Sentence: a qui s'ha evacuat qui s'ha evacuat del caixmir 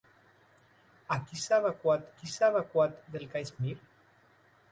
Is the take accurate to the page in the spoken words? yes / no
yes